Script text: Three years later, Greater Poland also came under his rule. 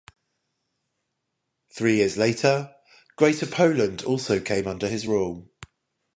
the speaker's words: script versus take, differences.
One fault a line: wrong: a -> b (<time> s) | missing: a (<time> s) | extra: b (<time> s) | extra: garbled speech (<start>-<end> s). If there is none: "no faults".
no faults